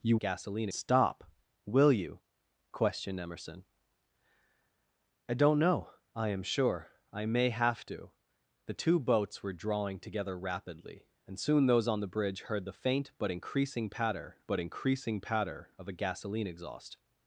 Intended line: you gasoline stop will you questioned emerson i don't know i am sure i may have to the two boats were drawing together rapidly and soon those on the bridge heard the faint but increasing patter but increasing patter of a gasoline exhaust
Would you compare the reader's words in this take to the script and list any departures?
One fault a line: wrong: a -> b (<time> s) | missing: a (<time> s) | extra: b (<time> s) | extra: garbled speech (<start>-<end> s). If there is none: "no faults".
no faults